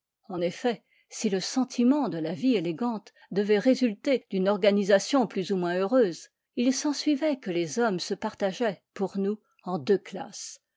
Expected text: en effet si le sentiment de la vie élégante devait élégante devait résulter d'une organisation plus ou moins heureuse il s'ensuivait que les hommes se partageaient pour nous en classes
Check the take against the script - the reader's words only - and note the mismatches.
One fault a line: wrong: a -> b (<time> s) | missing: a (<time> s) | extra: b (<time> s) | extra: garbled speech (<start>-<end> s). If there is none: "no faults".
missing: élégante devait (3.6 s)
extra: deux (9.8 s)